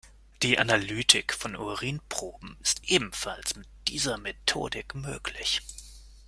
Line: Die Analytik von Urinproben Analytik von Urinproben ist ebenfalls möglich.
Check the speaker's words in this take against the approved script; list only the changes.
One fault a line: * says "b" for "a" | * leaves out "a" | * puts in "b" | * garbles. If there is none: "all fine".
* says "ist ebenfalls mit dieser Methodik" for "Analytik von Urinproben ist ebenfalls"